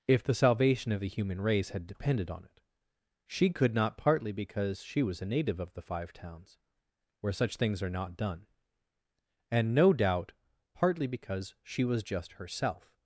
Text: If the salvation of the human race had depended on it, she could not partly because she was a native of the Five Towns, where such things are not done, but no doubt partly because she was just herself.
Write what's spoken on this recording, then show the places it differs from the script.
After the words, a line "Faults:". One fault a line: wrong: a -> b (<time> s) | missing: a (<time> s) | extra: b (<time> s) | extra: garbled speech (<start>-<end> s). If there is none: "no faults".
If the salvation of the human race had depended on it, she could not partly because she was a native of the Five Towns, where such things are not done, and no doubt partly because she was just herself.
Faults:
wrong: but -> and (9.5 s)